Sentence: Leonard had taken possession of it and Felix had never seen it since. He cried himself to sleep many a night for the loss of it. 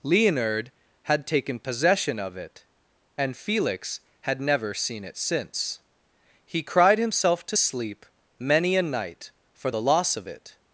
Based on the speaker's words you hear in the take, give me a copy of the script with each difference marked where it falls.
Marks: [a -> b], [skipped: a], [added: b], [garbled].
Leonard had taken possession of it and Felix had never seen it since. He cried himself to sleep many a night for the loss of it.